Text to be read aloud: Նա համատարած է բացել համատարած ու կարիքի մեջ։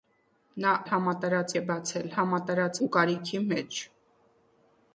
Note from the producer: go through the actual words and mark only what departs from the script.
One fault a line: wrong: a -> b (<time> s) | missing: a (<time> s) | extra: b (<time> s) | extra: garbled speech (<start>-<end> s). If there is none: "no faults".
no faults